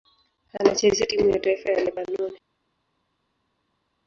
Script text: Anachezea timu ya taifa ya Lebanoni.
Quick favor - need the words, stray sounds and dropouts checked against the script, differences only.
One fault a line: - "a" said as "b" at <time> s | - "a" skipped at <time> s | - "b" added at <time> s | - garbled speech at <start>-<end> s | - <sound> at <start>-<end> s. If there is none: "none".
none